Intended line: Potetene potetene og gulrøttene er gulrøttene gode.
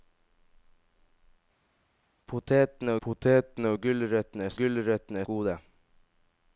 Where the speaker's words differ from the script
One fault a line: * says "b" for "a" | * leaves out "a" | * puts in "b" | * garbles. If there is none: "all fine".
all fine